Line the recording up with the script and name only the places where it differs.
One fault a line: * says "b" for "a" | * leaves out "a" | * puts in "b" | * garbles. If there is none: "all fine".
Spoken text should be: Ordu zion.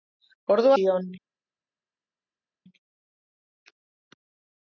all fine